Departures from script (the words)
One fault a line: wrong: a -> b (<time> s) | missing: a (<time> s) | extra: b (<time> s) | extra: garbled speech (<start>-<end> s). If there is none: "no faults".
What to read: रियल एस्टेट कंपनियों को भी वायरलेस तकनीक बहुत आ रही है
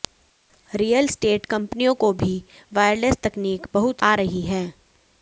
no faults